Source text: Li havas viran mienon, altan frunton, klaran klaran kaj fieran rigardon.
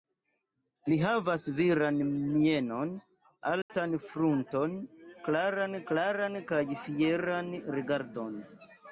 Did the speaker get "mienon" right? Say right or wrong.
right